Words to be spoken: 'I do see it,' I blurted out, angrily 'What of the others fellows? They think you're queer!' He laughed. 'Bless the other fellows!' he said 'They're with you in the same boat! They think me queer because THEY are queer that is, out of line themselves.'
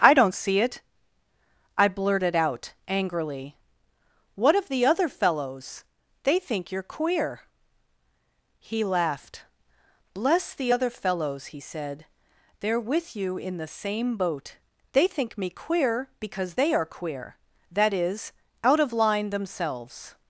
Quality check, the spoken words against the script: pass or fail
fail